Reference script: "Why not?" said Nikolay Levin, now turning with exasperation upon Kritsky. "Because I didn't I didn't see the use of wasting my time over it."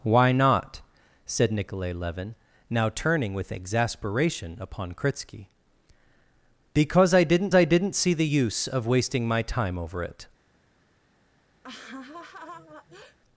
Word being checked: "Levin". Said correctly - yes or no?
yes